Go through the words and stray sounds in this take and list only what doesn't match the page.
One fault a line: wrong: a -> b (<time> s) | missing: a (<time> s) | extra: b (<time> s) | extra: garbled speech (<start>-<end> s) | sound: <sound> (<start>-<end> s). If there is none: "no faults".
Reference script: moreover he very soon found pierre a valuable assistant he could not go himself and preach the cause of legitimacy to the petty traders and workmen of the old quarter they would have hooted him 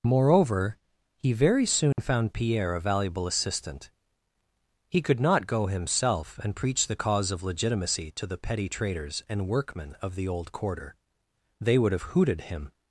sound: dropout (1.9-2.0 s)